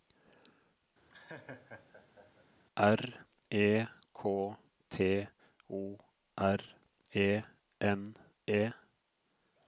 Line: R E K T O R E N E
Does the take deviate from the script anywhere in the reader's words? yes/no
no